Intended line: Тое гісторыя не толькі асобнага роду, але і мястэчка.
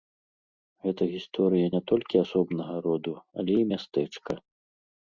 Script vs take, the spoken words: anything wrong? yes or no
yes